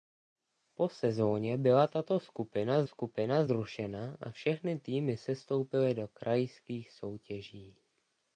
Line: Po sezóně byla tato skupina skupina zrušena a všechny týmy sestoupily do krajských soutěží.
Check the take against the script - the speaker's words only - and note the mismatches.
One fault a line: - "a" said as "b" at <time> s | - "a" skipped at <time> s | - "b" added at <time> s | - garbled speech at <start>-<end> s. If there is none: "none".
none